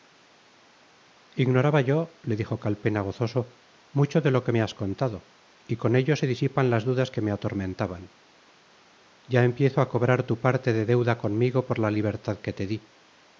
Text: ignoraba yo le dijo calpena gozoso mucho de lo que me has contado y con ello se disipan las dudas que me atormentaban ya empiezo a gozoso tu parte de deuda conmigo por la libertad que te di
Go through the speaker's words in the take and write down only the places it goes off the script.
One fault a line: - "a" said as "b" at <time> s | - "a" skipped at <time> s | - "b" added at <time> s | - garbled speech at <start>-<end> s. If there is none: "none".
- "gozoso" said as "cobrar" at 9.9 s